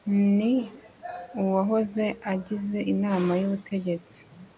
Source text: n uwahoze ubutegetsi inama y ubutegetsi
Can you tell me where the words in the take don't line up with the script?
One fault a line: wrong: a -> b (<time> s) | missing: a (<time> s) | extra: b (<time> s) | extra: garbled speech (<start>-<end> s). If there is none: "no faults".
wrong: ubutegetsi -> agize (2.3 s)